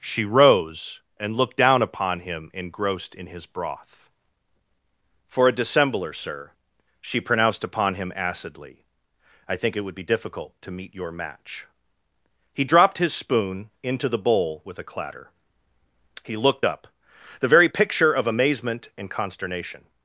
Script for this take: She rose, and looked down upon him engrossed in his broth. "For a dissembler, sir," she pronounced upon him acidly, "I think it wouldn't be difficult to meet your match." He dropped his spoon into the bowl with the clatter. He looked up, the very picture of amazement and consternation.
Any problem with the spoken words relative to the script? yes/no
yes